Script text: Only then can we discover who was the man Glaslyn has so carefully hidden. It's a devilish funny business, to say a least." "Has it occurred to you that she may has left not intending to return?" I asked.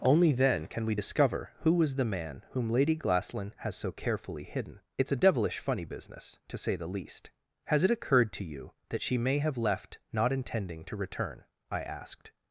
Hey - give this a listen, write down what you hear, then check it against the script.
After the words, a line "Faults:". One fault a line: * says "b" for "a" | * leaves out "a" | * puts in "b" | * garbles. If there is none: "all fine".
Only then can we discover who was the man whom Lady Glaslyn has so carefully hidden. It's a devilish funny business, to say the least." "Has it occurred to you that she may have left not intending to return?" I asked.
Faults:
* puts in "whom Lady"
* says "the" for "a"
* says "have" for "has"